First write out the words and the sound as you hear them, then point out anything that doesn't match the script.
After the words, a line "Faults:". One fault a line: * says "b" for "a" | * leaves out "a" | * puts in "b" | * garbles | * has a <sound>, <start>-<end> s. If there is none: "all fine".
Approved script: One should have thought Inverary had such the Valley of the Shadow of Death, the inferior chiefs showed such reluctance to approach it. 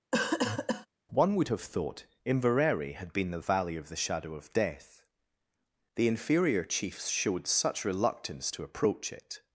One would have thought Inverary had been the Valley of the Shadow of Death, the inferior chiefs showed such reluctance to approach it.
Faults:
* has a cough, 0.1-0.9 s
* says "would" for "should"
* says "been" for "such"